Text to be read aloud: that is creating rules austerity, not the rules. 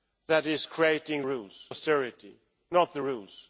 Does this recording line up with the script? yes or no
yes